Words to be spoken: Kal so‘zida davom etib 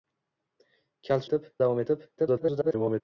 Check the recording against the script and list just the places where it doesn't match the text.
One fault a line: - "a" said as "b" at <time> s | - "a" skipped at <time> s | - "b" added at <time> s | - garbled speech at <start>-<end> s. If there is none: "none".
- "so‘zida" said as "etib" at 1.3 s
- garbled speech at 2.2-3.0 s